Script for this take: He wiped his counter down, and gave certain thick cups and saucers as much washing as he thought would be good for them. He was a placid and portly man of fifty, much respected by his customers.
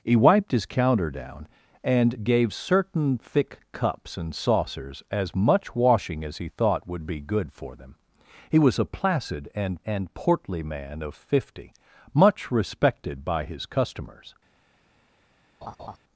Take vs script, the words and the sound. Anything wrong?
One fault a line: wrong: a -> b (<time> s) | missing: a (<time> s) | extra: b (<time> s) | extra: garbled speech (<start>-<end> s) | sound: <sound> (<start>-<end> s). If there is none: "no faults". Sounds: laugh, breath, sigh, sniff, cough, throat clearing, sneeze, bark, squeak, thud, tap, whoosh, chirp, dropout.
extra: and (9.9 s)
sound: laugh (15.6-16.0 s)